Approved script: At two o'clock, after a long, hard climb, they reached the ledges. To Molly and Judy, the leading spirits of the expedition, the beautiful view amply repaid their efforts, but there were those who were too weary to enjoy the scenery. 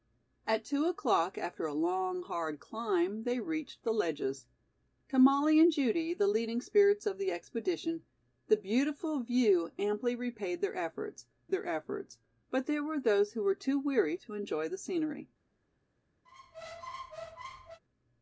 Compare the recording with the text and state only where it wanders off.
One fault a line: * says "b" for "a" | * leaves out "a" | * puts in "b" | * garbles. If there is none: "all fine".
* puts in "their efforts"